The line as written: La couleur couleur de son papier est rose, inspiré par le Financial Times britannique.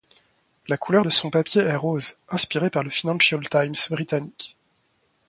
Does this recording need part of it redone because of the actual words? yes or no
yes